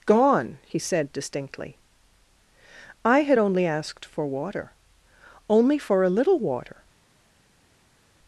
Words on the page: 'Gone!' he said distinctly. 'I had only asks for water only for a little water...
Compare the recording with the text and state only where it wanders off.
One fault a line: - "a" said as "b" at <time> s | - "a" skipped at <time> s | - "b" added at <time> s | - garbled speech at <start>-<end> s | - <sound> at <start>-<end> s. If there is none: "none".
- "asks" said as "asked" at 3.7 s